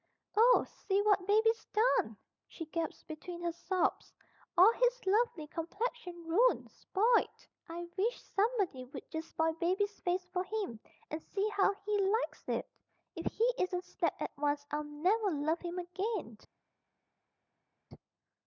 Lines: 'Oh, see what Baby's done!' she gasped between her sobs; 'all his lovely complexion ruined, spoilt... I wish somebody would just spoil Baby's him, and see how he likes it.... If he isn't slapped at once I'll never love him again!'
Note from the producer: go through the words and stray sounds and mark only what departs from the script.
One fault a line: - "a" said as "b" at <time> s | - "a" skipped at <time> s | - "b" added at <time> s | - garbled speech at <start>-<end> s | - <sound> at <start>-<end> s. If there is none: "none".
- "face for" added at 10.0 s